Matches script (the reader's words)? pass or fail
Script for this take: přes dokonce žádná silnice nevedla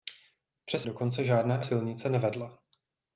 pass